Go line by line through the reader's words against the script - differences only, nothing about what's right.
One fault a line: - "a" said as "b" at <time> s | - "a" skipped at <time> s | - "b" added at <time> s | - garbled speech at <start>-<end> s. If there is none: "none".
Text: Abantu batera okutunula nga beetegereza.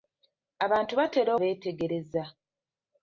- "okutunula nga" skipped at 1.3 s